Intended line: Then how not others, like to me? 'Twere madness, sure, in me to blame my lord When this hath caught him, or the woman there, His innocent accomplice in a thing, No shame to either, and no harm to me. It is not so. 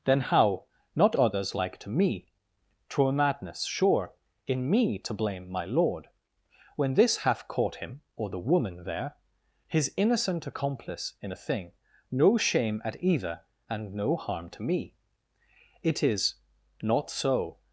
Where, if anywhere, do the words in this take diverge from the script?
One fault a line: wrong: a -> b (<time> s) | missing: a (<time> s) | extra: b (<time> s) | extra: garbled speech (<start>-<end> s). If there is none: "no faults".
wrong: to -> at (12.8 s)